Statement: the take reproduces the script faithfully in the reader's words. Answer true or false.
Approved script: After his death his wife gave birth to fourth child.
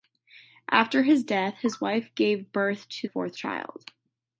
true